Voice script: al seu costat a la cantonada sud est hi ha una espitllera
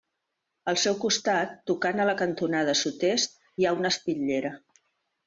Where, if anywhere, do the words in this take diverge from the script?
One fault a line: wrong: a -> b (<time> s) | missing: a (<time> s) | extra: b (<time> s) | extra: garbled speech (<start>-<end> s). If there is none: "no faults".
extra: tocant (1.7 s)